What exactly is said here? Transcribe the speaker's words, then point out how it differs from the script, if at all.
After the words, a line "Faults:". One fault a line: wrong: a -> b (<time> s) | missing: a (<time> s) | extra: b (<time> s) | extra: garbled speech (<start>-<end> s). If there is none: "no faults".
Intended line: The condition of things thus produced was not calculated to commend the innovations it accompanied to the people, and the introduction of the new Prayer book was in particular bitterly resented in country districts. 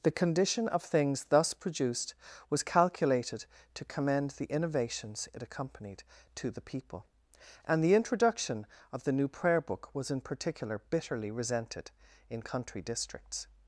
The condition of things thus produced was calculated to commend the innovations it accompanied to the people, and the introduction of the new Prayer book was in particular bitterly resented in country districts.
Faults:
missing: not (2.6 s)